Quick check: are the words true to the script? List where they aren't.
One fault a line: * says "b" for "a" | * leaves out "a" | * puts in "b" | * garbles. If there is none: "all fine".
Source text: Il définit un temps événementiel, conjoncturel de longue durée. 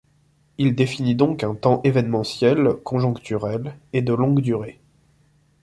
* puts in "donc"
* puts in "et"